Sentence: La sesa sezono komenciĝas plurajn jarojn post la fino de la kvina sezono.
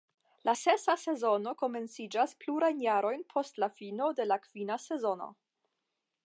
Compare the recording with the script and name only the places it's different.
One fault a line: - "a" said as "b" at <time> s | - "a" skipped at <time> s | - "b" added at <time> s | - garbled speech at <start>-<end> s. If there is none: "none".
none